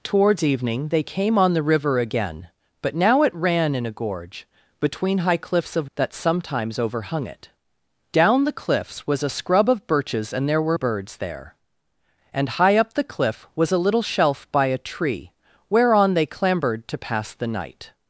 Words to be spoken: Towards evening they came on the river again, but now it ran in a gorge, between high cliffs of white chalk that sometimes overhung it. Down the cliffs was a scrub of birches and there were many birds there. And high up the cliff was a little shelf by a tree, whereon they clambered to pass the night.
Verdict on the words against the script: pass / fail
fail